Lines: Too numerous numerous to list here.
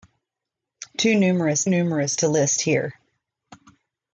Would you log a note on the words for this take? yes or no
no